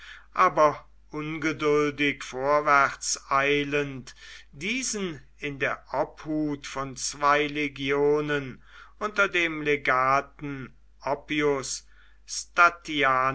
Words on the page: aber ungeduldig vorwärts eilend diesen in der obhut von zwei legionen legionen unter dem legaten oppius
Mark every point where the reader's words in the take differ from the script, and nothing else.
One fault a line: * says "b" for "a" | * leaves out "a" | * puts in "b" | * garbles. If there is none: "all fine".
* leaves out "legionen"